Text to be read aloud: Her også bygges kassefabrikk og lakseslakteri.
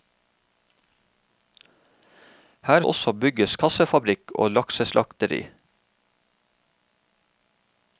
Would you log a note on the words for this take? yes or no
no